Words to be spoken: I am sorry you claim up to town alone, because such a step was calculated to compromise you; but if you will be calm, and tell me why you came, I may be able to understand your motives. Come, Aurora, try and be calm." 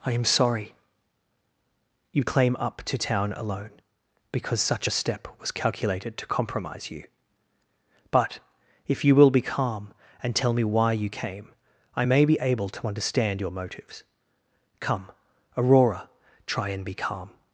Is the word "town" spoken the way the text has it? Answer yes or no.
yes